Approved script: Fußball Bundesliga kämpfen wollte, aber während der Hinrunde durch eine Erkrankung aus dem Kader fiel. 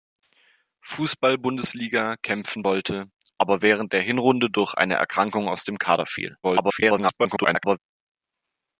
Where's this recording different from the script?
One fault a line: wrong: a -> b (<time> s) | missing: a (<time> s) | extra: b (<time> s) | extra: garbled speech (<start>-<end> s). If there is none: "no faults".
extra: garbled speech (6.4-7.8 s)